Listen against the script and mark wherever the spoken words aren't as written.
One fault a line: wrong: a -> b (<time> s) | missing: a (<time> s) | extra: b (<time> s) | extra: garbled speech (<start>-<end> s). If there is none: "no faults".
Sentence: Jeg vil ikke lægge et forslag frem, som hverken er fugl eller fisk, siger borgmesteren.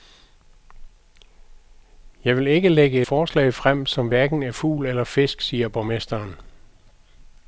missing: et (3.0 s)